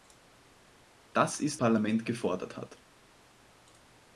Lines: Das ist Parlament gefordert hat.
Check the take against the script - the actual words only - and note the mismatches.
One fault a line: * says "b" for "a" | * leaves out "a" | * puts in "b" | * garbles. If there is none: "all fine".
all fine